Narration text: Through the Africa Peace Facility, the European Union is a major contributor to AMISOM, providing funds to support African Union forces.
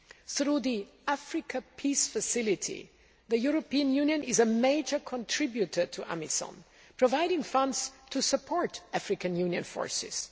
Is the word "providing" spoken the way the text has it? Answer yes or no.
yes